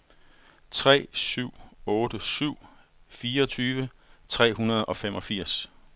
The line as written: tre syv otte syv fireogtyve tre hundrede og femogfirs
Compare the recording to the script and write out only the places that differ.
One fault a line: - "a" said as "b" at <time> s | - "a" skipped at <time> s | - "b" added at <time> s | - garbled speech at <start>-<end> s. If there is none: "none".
none